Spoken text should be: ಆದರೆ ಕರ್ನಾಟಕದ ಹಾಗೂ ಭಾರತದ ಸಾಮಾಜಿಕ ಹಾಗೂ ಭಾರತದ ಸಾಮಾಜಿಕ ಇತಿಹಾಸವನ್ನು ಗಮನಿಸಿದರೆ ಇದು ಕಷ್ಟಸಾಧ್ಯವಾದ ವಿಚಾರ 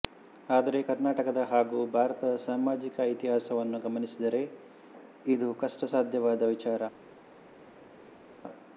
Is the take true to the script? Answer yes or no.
no